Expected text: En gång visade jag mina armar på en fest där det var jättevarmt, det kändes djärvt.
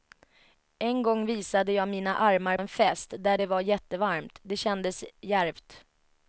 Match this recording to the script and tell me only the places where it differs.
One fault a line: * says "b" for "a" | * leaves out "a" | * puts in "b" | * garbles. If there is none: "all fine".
* leaves out "på"